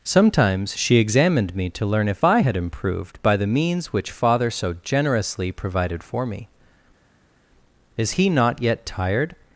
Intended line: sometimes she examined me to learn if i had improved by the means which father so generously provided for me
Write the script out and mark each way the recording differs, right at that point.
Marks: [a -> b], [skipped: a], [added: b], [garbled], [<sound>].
sometimes she examined me to learn if i had improved by the means which father so generously provided for me [added: is he not yet tired]